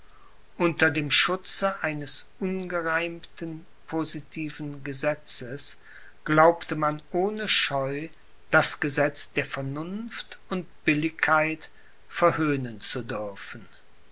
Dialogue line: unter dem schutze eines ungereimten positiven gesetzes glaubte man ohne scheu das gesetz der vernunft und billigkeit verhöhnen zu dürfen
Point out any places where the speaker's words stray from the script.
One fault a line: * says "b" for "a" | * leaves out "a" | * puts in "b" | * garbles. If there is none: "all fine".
all fine